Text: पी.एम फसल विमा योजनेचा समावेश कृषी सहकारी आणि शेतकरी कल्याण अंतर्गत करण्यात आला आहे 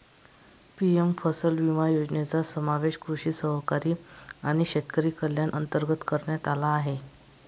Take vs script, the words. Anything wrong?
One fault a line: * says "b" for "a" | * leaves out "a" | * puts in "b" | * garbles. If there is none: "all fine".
all fine